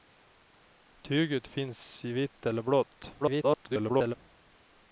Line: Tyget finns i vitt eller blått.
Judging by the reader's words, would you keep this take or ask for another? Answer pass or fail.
fail